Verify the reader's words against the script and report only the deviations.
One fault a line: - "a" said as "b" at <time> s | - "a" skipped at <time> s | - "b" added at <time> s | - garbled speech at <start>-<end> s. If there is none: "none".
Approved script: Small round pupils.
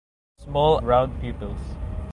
none